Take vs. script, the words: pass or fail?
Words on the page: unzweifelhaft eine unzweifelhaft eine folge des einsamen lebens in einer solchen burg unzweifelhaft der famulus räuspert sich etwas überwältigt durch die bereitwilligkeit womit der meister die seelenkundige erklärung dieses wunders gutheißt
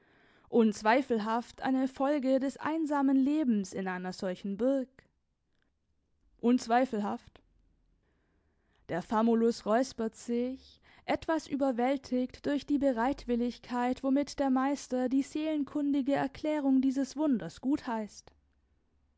fail